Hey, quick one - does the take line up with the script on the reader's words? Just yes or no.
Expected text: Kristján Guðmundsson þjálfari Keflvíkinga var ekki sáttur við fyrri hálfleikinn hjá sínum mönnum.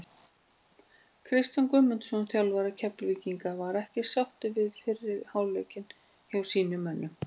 yes